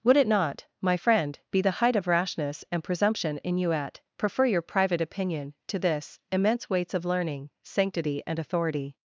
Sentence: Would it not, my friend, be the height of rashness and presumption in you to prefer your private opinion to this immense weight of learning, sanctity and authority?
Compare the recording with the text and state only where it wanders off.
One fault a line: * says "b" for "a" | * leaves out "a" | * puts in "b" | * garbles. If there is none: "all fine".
* says "at" for "to"
* says "weights" for "weight"